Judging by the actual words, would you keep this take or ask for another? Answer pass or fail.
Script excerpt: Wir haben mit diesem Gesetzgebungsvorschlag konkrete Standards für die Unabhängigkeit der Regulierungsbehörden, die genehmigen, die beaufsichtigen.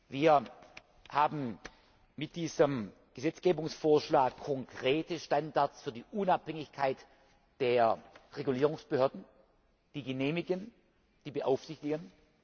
pass